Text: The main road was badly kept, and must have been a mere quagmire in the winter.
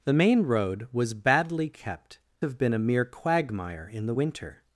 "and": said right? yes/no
no